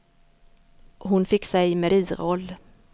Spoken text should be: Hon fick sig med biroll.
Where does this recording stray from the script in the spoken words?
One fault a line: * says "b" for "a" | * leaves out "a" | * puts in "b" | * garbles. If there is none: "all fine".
all fine